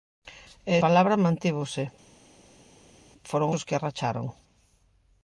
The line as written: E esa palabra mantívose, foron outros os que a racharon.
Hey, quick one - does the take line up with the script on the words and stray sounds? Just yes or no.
no